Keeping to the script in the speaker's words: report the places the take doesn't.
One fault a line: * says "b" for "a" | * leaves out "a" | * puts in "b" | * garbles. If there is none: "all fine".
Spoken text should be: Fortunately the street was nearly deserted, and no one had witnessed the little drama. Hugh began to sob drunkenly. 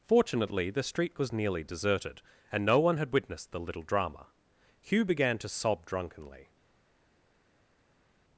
all fine